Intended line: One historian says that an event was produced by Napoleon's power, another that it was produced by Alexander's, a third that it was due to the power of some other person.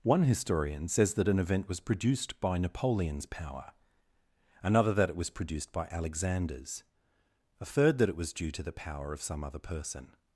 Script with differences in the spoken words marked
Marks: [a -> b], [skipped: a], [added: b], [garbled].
One historian says that an event was produced by Napoleon's power, another that it was produced by Alexander's, a third that it was due to the power of some other person.